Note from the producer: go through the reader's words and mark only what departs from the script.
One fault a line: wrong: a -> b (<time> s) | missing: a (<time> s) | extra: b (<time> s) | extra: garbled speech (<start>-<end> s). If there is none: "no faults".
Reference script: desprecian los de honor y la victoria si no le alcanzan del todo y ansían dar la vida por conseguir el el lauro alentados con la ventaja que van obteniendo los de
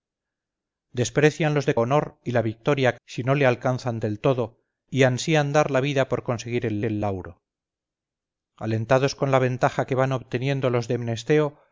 no faults